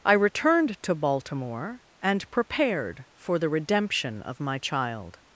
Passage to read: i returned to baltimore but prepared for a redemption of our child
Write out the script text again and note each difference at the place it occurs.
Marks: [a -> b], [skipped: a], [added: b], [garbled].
i returned to baltimore [but -> and] prepared for [a -> the] redemption of [our -> my] child